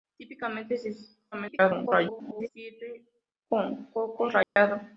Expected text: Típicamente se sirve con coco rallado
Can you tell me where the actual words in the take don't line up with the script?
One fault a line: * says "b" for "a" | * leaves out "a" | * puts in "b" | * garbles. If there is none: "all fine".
* garbles